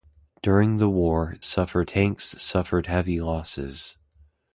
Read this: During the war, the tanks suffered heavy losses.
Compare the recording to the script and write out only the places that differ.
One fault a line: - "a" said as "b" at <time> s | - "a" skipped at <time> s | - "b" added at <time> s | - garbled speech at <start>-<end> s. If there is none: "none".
- "the" said as "suffered" at 1.4 s